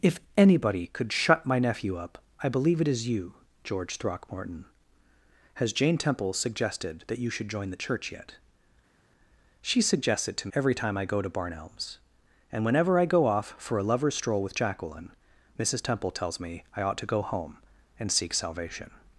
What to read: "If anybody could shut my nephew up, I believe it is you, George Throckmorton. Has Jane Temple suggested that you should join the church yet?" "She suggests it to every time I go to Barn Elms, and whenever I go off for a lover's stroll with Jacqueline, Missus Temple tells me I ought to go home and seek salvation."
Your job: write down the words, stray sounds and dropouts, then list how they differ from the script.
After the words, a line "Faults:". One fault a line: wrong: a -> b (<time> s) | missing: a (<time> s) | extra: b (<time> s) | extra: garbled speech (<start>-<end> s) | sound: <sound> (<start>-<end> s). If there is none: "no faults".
"If anybody could shut my nephew up, I believe it is you, George Throckmorton. Has Jane Temple suggested that you should join the church yet?" "She suggests it to every time I go to Barn Elms, and whenever I go off for a lover's stroll with Jacqueline, Missus Temple tells me I ought to go home and seek salvation."
Faults:
no faults